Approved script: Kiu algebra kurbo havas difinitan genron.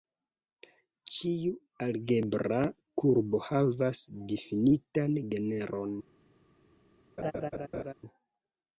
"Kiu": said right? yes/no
no